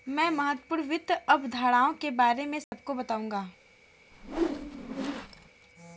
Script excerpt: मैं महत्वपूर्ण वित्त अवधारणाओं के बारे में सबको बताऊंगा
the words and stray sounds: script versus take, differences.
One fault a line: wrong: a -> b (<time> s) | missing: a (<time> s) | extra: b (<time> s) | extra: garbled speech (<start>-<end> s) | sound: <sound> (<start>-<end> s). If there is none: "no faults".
sound: dropout (2.6-2.7 s)
sound: whoosh (4.1-5.5 s)